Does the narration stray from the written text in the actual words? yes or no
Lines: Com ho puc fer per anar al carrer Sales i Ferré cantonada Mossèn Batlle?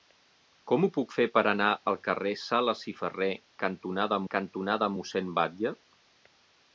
yes